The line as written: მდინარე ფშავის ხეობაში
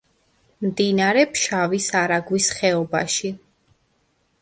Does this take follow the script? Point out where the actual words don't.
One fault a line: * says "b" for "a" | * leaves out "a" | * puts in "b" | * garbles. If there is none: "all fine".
* puts in "არაგვის"